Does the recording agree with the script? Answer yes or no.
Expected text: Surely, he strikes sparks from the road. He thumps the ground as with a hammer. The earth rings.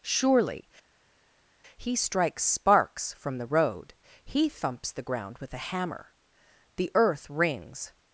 no